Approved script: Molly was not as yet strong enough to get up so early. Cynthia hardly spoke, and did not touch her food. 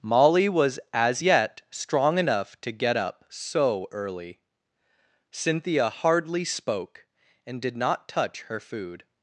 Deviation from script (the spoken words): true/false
true